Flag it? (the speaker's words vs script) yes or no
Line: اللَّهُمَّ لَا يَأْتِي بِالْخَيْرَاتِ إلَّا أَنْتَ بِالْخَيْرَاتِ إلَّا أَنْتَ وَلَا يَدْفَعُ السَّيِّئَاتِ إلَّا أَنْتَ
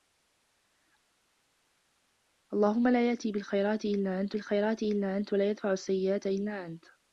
no